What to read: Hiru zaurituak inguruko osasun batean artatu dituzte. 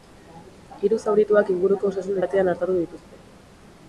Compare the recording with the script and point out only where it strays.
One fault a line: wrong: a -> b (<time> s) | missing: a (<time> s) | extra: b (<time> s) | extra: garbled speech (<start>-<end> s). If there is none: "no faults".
no faults